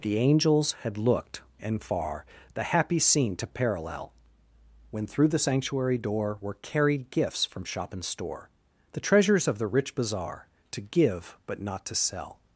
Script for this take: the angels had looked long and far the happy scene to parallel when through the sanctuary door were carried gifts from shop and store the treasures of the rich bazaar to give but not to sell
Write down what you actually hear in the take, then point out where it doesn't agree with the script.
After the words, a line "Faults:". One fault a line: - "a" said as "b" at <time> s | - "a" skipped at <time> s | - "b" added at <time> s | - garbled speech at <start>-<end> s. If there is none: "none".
the angels had looked and far the happy scene to parallel when through the sanctuary door were carried gifts from shop and store the treasures of the rich bazaar to give but not to sell
Faults:
- "long" skipped at 1.4 s